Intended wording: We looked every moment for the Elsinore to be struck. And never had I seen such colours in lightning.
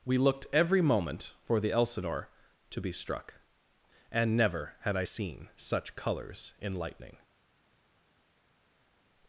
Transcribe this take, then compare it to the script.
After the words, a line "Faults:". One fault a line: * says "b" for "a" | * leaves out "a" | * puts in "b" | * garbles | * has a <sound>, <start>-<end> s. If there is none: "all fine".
We looked every moment for the Elsinore to be struck. And never had I seen such colours in lightning.
Faults:
all fine